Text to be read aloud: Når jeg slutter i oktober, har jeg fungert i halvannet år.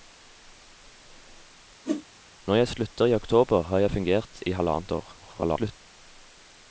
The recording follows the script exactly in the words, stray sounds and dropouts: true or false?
false